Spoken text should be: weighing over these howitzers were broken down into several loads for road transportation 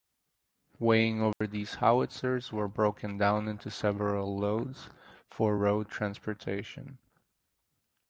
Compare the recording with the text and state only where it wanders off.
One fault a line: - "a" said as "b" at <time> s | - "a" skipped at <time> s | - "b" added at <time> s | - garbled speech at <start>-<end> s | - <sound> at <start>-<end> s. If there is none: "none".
- dropout at 1.3-1.4 s